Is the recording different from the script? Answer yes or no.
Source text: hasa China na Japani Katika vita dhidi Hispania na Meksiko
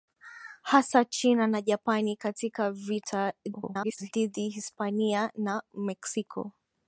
yes